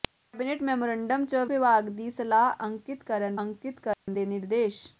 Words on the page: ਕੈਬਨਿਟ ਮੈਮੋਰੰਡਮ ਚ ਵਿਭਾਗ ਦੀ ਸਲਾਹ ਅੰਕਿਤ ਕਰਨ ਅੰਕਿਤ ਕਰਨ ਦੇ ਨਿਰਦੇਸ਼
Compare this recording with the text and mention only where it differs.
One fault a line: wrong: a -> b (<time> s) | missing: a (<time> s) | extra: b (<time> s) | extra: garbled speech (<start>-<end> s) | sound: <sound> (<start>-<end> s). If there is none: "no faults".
sound: dropout (3.9-4.1 s)